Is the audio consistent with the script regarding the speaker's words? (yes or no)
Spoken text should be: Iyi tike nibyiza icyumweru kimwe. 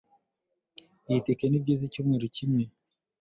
yes